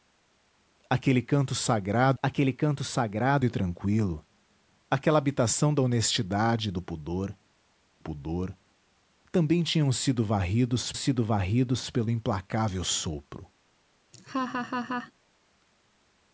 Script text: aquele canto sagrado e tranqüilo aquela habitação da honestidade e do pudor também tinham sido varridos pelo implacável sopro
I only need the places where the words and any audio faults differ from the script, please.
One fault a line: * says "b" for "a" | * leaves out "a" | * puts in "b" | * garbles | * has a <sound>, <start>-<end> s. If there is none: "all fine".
* puts in "aquele canto sagrado"
* puts in "pudor"
* puts in "sido varridos"
* has a laugh, 14.1-15.1 s